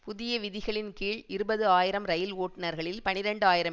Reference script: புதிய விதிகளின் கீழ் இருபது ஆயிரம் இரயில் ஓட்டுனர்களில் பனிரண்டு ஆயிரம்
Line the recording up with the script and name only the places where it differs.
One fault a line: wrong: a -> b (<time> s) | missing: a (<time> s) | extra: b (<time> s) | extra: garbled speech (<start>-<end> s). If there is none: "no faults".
no faults